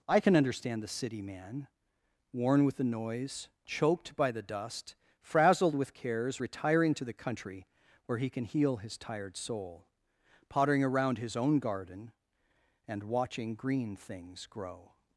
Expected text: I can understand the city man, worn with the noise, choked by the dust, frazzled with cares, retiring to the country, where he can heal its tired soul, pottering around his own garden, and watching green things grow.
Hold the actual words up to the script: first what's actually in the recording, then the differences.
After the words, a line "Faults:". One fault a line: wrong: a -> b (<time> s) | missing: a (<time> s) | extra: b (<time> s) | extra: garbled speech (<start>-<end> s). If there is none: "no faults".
I can understand the city man, worn with the noise, choked by the dust, frazzled with cares, retiring to the country, where he can heal his tired soul, pottering around his own garden, and watching green things grow.
Faults:
wrong: its -> his (8.8 s)